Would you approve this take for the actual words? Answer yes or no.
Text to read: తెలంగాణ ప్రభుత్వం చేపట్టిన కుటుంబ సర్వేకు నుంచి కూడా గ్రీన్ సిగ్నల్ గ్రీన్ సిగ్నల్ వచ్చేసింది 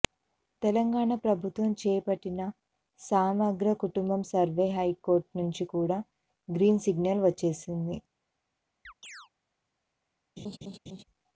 no